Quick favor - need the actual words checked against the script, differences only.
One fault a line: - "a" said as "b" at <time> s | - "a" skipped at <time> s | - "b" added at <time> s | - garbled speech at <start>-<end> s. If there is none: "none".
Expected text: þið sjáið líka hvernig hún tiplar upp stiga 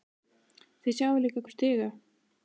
- "hvernig hún tiplar" skipped at 1.4 s